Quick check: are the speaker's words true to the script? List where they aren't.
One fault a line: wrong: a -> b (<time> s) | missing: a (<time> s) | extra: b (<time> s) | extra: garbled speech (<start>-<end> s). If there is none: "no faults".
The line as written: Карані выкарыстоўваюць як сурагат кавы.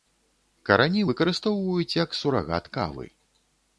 no faults